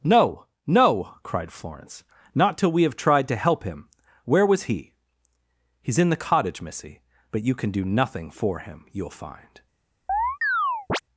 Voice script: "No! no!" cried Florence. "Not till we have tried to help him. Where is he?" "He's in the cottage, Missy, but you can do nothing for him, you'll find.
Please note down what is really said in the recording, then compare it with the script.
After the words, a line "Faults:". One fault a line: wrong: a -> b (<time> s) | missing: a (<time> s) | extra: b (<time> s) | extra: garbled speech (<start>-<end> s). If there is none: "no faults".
"No! no!" cried Florence. "Not till we have tried to help him. Where was he?" "He's in the cottage, Missy, but you can do nothing for him, you'll find.
Faults:
wrong: is -> was (4.5 s)